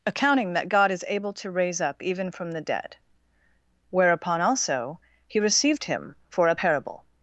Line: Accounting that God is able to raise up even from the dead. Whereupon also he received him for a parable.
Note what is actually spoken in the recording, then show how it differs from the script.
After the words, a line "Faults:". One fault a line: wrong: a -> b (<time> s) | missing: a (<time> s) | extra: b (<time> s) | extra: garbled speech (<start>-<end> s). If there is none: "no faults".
Accounting that God is able to raise up even from the dead. Whereupon also he received him for a parable.
Faults:
no faults